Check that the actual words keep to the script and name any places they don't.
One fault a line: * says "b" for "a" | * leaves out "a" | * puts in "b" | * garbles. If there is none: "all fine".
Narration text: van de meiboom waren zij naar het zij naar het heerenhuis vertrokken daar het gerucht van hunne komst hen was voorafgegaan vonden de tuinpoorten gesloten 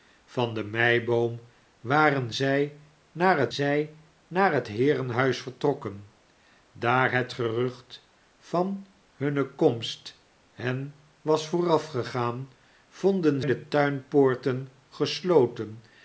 all fine